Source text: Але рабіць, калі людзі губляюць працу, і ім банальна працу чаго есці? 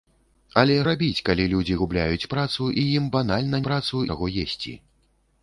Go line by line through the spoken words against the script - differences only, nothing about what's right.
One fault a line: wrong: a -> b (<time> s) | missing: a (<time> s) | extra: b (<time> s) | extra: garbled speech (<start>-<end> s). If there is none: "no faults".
no faults